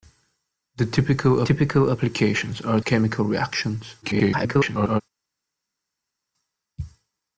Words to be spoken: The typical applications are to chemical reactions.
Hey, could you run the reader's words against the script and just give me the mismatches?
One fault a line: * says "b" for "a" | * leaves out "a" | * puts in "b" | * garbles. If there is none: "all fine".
* puts in "typical"
* leaves out "to"
* garbles